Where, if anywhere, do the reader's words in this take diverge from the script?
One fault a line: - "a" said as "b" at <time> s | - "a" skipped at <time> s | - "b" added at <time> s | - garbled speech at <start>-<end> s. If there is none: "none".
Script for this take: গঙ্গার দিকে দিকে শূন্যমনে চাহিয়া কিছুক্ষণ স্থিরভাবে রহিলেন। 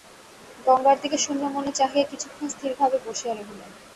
- "দিকে" skipped at 1.2 s
- "বসিয়া" added at 3.0 s